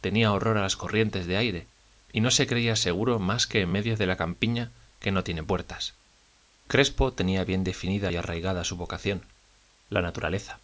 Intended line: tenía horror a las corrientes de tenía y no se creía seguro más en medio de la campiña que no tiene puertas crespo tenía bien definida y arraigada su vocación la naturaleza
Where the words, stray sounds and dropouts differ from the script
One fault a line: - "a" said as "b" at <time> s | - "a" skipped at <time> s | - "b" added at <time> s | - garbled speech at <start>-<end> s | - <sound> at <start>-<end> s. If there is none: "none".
- "tenía" said as "aire" at 1.4 s
- "que" added at 3.5 s